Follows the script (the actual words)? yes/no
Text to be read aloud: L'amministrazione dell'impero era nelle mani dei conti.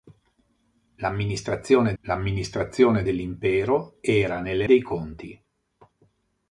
no